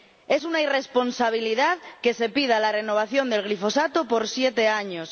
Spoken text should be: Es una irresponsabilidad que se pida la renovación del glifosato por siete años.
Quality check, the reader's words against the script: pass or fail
pass